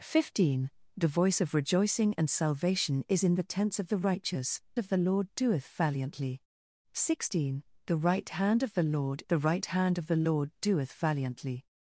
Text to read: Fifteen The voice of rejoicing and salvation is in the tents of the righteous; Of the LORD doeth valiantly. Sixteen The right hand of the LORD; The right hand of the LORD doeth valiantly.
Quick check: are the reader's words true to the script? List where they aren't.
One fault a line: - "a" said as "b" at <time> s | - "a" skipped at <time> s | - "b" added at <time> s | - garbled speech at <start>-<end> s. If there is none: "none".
none